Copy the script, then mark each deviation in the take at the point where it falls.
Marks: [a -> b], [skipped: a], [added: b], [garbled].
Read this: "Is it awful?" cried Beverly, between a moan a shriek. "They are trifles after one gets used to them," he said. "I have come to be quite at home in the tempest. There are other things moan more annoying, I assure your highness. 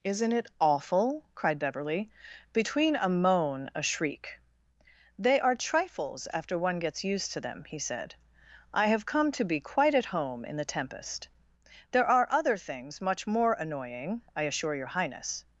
["Is -> Isn't] it awful?" cried Beverly, between a moan a shriek. "They are trifles after one gets used to them," he said. "I have come to be quite at home in the tempest. There are other things [moan -> much] more annoying, I assure your highness.